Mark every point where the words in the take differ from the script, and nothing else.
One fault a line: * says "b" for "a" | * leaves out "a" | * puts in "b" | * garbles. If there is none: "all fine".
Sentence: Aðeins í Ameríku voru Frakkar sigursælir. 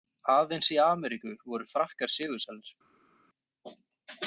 all fine